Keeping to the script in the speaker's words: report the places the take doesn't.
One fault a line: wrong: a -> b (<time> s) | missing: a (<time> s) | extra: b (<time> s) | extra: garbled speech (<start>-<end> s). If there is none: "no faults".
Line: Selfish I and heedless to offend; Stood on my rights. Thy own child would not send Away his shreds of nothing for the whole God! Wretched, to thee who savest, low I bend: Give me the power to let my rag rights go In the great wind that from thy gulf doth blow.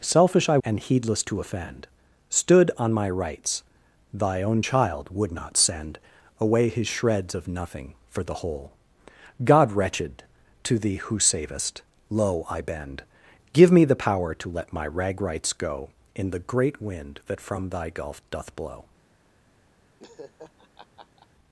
no faults